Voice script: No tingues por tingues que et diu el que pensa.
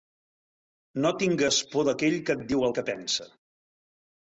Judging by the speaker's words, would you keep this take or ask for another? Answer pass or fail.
fail